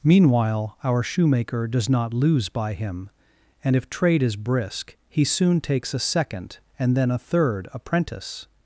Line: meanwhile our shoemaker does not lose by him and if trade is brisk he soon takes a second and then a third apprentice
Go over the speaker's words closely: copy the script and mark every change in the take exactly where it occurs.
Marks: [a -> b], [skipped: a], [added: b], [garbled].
meanwhile our shoemaker does not lose by him and if trade is brisk he soon takes a second and then a third apprentice